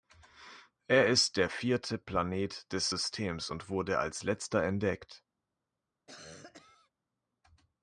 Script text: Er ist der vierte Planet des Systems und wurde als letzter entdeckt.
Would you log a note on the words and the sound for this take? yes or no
yes